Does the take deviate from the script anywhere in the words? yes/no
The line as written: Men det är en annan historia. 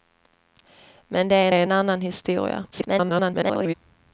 yes